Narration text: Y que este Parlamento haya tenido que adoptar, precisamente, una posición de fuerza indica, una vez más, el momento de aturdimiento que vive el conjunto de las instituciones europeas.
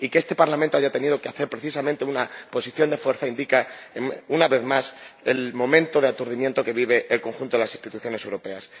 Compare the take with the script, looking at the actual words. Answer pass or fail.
pass